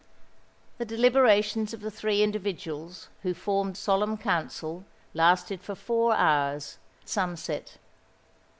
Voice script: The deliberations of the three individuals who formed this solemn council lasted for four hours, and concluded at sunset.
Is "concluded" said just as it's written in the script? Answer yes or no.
no